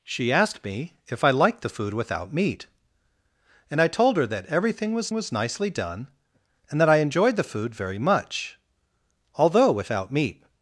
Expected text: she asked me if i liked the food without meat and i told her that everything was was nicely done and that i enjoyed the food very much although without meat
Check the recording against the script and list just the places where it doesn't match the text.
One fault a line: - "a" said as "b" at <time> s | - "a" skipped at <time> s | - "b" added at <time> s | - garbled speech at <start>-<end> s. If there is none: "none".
none